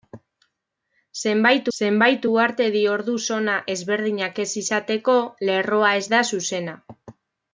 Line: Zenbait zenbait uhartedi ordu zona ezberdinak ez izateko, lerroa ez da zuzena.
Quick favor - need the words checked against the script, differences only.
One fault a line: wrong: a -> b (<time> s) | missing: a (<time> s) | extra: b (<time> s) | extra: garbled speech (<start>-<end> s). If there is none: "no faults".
no faults